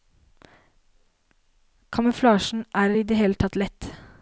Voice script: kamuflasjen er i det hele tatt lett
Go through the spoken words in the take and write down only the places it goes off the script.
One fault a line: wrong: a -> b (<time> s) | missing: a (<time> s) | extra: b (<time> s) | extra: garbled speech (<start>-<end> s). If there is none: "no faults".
no faults